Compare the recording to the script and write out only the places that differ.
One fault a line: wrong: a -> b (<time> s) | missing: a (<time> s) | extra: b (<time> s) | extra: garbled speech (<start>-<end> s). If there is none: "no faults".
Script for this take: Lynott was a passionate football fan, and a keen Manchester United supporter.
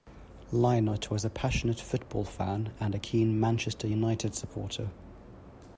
no faults